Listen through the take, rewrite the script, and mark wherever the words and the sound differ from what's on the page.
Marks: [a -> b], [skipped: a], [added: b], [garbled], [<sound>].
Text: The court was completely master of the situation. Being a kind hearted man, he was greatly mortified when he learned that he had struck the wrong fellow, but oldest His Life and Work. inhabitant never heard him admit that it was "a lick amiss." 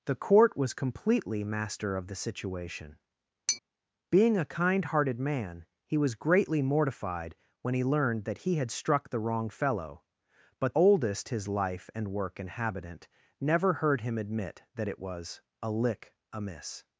The court was completely master of the situation. [tap] Being a kind hearted man, he was greatly mortified when he learned that he had struck the wrong fellow, but oldest His Life and Work. inhabitant never heard him admit that it was "a lick amiss."